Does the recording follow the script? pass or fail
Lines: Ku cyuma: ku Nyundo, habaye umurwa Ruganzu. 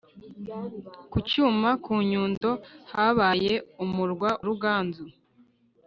pass